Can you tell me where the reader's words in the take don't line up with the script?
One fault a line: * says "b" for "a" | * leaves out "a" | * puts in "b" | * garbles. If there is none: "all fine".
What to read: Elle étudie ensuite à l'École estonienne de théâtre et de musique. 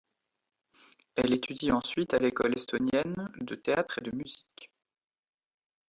all fine